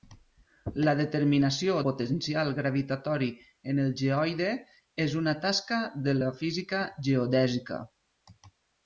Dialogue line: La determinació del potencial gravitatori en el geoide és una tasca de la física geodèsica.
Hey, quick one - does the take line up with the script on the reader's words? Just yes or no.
no